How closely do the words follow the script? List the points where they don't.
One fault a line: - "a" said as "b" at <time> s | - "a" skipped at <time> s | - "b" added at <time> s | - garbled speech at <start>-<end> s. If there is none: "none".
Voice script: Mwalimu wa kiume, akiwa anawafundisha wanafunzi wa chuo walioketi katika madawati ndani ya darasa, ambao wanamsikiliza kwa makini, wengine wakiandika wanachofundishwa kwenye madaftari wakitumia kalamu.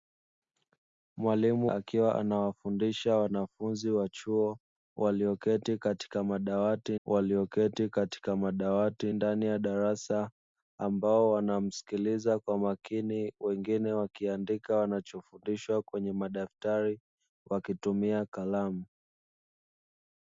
- "wa kiume" skipped at 1.7 s
- "walioketi katika madawati" added at 7.1 s